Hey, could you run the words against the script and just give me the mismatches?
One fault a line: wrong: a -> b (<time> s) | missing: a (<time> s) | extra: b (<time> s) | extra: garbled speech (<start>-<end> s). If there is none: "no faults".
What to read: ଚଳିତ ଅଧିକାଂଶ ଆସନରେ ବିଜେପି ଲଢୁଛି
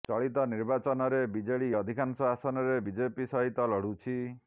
extra: ନିର୍ବାଚନରେ ବିଜେଡି (0.5 s)
extra: ସହିତ (3.3 s)